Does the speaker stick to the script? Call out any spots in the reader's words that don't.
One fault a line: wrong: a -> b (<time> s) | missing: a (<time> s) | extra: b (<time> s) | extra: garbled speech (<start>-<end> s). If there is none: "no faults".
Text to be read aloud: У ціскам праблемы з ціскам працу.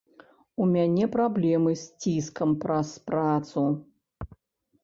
wrong: ціскам -> мяне (0.8 s)
extra: праз (2.6 s)